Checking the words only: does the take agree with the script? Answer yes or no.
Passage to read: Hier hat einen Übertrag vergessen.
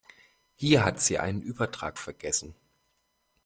no